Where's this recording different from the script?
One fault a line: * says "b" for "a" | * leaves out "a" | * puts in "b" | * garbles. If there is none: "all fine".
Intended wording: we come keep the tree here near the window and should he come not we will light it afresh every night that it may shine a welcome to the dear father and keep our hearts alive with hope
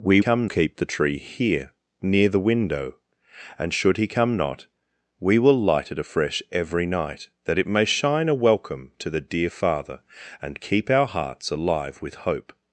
all fine